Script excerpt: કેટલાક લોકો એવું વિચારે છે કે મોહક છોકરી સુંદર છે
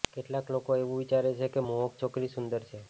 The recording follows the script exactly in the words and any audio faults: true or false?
true